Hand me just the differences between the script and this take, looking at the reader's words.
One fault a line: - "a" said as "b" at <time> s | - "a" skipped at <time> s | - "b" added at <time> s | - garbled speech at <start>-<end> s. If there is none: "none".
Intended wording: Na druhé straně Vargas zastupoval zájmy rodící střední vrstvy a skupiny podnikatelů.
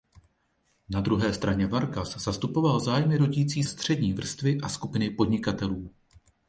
none